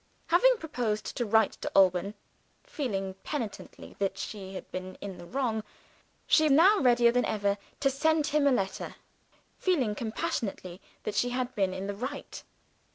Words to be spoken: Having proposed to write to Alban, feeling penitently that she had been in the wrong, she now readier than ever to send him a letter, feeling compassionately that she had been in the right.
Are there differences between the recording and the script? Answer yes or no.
no